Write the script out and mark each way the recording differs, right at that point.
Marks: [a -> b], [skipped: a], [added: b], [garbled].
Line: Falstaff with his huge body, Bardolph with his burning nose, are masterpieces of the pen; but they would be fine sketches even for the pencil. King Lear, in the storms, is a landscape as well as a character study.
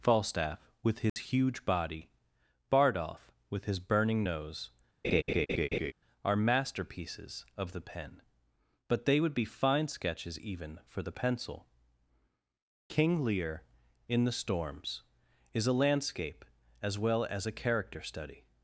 Falstaff with his huge body, Bardolph with his burning nose, are masterpieces of the pen; but they would be fine sketches even for the pencil. King Lear, in the storms, is a landscape as well as a character study.